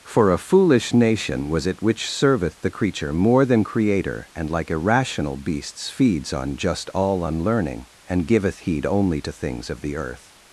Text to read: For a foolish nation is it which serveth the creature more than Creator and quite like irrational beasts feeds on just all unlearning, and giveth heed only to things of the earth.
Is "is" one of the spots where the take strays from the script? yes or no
yes